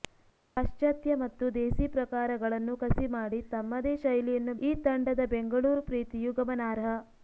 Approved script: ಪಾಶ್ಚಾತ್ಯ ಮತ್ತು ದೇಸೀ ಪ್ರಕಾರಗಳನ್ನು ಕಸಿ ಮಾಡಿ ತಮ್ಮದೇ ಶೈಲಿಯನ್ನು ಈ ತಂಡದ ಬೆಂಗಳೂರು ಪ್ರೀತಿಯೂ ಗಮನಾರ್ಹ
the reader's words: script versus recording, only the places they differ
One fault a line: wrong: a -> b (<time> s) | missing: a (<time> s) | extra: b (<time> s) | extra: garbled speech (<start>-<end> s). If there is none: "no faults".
no faults